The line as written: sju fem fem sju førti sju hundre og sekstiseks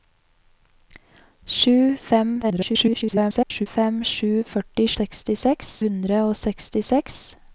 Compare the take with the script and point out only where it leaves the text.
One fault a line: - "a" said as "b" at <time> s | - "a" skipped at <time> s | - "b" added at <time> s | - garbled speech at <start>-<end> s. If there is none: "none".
- garbled speech at 2.4-3.7 s
- "sju" said as "sekstiseks" at 5.0 s